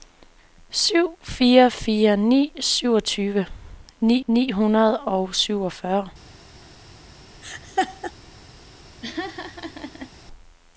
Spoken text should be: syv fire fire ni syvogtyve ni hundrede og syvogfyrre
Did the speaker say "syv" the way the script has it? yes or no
yes